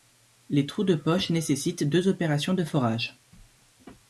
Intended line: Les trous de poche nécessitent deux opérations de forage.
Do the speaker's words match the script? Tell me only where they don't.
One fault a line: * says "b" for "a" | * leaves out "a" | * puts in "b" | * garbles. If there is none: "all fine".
all fine